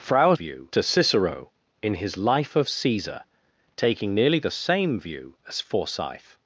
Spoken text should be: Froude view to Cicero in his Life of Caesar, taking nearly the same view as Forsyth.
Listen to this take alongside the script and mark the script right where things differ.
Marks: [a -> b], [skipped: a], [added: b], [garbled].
Froude view to Cicero in his Life of Caesar, taking nearly the same view as Forsyth.